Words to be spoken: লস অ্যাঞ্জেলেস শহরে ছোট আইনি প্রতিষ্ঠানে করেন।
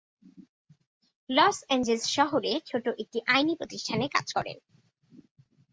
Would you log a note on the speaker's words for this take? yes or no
yes